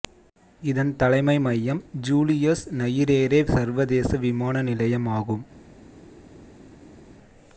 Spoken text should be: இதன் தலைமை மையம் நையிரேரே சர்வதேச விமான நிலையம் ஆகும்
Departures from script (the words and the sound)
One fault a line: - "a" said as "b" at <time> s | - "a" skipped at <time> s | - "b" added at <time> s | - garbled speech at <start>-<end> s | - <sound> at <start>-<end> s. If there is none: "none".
- "ஜூலியஸ்" added at 2.0 s